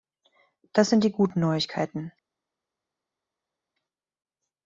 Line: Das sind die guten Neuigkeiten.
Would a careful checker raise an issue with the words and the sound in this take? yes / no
no